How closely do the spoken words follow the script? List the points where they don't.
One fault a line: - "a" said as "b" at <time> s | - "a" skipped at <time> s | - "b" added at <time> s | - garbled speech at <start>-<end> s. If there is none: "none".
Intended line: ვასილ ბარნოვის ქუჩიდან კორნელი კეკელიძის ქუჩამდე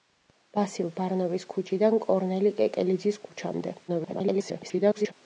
- garbled speech at 3.9-5.1 s